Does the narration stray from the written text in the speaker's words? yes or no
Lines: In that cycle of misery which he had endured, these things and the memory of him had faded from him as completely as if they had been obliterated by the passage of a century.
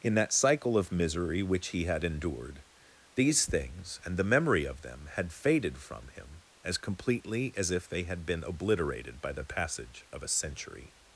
yes